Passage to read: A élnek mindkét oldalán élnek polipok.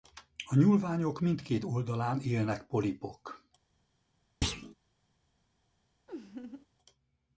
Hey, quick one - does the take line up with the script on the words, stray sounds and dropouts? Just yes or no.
no